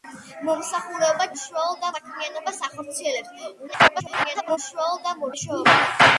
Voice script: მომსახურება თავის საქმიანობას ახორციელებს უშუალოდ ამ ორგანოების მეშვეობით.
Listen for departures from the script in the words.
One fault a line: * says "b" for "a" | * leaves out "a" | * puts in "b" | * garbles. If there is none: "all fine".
* says "უშუალოდ" for "თავის"
* garbles
* leaves out "ორგანოების"